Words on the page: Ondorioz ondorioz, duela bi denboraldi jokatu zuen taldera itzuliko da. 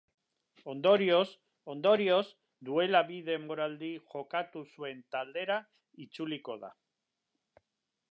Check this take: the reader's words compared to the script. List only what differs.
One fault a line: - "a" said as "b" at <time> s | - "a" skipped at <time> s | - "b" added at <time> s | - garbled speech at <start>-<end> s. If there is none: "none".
none